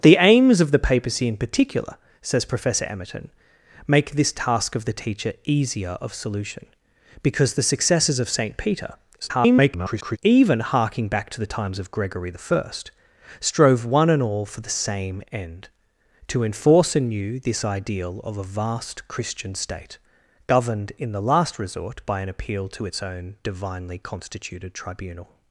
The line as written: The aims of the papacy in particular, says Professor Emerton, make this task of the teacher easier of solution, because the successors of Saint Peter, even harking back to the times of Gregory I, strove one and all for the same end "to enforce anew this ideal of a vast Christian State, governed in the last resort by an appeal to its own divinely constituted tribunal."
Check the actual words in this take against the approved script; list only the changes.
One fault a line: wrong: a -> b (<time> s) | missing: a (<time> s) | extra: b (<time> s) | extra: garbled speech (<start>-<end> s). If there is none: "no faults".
extra: garbled speech (9.2-10.2 s)